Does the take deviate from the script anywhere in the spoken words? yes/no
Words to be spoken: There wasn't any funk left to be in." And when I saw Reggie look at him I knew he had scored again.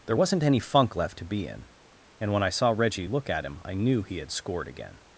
no